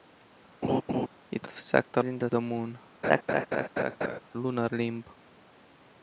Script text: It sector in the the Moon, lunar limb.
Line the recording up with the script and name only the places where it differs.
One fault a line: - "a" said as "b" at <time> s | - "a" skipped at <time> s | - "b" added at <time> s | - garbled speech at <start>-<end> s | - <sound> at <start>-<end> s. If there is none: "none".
- laugh at 0.6-1.1 s
- laugh at 3.0-4.2 s